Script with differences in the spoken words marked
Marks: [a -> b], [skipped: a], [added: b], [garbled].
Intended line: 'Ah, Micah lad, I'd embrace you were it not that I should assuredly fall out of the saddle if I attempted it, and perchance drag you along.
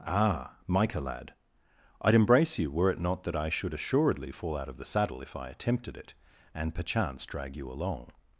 'Ah, Micah lad, I'd embrace you were it not that I should assuredly fall out of the saddle if I attempted it, and perchance drag you along.